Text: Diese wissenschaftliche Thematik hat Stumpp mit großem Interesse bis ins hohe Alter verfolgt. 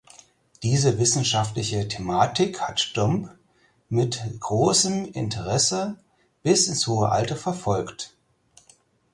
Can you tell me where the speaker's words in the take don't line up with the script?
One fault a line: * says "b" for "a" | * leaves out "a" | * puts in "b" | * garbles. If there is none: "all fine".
all fine